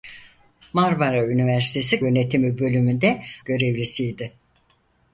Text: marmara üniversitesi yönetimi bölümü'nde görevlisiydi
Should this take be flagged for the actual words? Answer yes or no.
no